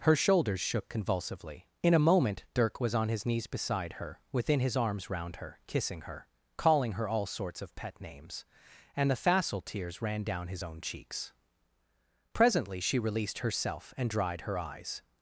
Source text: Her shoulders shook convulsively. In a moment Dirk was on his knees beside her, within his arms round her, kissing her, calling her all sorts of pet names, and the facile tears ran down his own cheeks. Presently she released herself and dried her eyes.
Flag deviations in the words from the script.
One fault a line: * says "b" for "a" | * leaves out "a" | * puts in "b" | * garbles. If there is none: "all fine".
all fine